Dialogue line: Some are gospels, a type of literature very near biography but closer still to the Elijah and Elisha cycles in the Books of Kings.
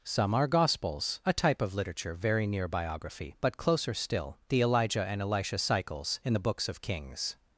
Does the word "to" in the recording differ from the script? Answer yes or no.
yes